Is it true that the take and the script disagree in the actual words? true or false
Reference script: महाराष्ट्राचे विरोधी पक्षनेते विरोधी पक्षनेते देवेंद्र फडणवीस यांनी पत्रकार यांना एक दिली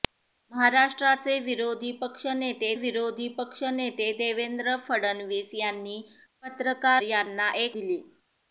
false